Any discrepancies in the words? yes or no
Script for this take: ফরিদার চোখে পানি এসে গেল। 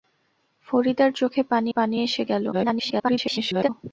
yes